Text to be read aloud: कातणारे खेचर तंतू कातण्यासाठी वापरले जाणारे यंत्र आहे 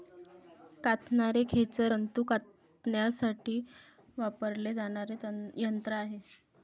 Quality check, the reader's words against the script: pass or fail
pass